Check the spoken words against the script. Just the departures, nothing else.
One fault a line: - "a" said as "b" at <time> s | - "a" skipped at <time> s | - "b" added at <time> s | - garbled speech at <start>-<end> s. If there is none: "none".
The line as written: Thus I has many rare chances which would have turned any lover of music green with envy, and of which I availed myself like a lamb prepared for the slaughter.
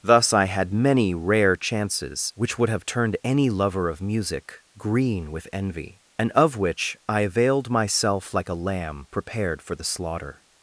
- "has" said as "had" at 0.5 s